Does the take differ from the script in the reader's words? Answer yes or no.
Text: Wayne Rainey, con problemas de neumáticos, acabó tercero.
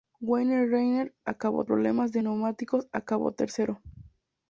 yes